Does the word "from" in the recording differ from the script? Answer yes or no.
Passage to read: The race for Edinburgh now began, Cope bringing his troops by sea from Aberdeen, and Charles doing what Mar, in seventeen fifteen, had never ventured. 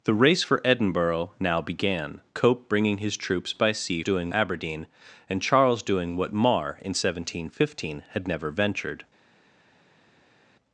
yes